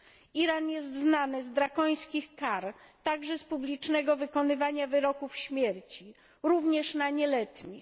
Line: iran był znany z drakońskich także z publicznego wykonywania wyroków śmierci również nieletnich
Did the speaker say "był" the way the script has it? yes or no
no